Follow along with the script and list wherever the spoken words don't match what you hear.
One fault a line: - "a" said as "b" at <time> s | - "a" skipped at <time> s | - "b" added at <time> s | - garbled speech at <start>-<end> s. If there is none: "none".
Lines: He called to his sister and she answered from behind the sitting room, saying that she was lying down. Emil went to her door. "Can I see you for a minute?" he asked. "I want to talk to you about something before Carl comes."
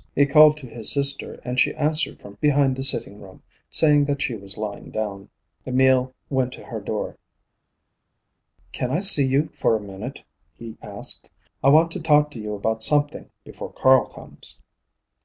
none